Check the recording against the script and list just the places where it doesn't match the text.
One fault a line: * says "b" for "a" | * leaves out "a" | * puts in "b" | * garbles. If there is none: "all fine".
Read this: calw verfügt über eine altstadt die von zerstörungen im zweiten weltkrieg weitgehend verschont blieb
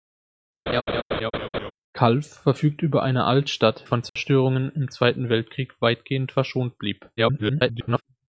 * leaves out "die"
* garbles